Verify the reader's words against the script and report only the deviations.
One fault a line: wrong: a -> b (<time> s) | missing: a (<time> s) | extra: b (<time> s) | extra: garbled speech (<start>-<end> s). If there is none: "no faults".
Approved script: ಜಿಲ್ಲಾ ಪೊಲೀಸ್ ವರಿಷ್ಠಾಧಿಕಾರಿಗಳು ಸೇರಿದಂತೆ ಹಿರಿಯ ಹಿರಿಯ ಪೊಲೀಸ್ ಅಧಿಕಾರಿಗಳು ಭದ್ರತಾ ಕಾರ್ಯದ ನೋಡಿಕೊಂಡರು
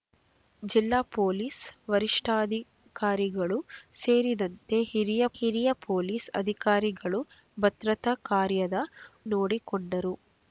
no faults